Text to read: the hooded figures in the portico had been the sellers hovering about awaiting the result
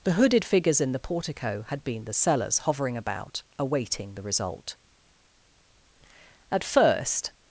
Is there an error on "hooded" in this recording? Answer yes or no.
no